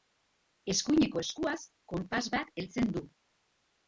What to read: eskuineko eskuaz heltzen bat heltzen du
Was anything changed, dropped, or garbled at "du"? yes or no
no